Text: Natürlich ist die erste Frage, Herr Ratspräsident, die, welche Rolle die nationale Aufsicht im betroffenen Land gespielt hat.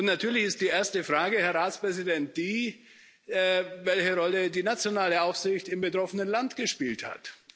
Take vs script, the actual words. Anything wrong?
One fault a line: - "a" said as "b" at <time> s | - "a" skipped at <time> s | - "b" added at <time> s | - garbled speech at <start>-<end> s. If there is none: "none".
none